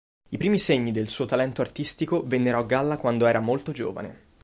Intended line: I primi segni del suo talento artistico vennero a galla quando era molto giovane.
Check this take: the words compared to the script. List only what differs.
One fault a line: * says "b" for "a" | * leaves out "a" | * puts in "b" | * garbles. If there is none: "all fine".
all fine